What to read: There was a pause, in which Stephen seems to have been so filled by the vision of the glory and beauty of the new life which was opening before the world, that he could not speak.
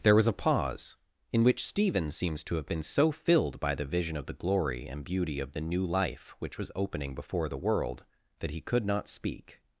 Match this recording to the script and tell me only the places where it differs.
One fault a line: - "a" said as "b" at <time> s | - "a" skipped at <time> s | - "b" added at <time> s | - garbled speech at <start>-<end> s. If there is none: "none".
none